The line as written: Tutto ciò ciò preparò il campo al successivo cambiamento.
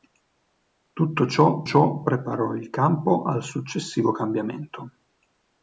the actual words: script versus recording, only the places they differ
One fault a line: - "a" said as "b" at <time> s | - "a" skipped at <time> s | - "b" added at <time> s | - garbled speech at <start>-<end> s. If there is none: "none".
none